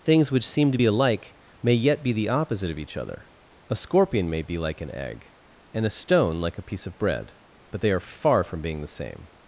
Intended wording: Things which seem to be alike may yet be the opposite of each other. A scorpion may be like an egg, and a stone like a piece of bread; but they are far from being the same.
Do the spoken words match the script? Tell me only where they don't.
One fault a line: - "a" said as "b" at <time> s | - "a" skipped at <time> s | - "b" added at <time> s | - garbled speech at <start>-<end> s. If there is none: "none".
none